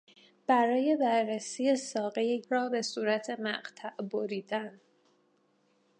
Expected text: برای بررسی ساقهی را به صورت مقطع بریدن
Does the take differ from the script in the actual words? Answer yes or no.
no